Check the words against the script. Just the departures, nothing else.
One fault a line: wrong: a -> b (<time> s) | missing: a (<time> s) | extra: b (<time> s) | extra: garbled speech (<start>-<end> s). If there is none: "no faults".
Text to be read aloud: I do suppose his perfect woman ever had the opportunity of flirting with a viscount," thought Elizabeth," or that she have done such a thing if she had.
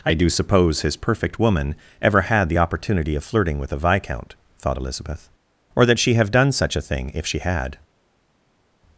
no faults